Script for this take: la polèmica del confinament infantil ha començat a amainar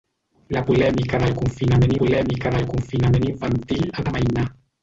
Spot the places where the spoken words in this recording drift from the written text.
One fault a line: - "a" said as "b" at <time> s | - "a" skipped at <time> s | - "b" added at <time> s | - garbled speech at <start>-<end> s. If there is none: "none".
- "polèmica del confinament" added at 2.0 s
- "començat" skipped at 4.1 s